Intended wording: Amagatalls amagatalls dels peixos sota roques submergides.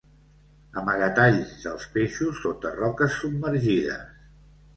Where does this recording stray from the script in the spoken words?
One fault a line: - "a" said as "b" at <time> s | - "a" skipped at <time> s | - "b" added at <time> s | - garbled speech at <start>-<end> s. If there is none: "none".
- "amagatalls" skipped at 1.5 s